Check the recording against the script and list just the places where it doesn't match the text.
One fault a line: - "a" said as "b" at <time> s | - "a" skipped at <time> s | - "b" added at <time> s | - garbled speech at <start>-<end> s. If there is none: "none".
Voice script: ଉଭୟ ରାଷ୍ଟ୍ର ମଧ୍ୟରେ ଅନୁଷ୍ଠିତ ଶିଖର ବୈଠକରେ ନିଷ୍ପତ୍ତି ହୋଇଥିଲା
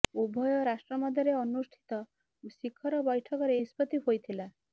none